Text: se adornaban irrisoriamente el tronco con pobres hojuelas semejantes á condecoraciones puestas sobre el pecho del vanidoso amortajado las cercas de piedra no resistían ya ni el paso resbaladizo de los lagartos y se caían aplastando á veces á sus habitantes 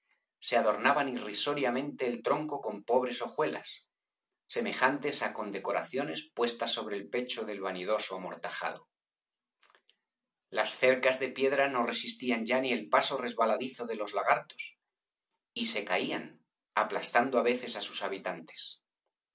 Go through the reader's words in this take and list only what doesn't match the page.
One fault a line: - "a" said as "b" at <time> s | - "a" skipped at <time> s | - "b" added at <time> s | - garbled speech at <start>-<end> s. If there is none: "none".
none